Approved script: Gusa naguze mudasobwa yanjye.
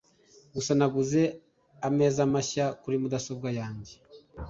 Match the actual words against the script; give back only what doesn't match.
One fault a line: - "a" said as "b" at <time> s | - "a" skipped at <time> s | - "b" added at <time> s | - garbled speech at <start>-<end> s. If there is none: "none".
- "ameza mashya kuri" added at 1.9 s